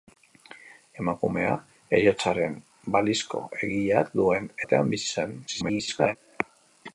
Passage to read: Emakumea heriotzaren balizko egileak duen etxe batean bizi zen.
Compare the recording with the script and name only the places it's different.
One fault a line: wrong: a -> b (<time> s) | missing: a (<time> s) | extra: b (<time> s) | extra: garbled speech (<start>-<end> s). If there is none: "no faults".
missing: etxe (4.5 s)
extra: garbled speech (5.5-6.2 s)